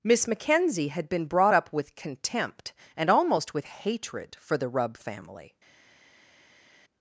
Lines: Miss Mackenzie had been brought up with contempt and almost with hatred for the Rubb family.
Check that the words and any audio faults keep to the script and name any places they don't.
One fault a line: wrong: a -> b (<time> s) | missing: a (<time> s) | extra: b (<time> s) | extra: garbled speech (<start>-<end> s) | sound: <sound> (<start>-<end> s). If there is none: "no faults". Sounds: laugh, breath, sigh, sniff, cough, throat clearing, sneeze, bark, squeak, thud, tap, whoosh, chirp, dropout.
no faults